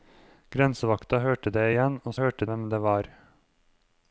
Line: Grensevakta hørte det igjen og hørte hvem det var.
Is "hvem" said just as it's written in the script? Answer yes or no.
yes